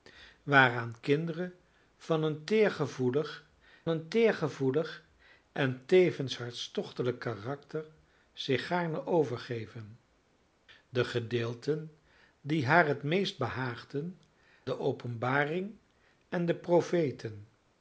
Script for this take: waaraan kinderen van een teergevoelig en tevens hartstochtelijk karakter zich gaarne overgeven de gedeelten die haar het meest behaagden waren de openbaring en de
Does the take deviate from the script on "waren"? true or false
true